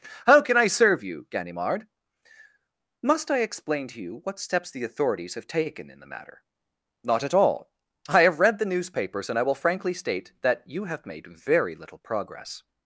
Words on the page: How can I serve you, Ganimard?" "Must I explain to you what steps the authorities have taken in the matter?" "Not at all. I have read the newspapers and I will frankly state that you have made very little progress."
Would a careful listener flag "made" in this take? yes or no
no